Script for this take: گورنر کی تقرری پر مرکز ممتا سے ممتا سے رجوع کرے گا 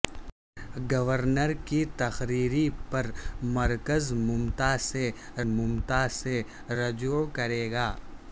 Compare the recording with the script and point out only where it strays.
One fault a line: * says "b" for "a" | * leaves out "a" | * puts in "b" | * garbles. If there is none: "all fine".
all fine